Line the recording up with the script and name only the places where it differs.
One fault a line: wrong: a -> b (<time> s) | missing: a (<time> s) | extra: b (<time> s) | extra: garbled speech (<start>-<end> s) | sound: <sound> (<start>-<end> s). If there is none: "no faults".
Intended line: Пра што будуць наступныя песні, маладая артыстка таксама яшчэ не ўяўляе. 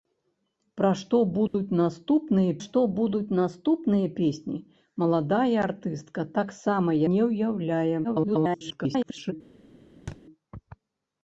sound: dropout (1.5-1.5 s)
extra: што будуць наступныя (2.6 s)
missing: яшчэ (6.9 s)
extra: garbled speech (8.0-9.3 s)
sound: thud (10.1-10.2 s)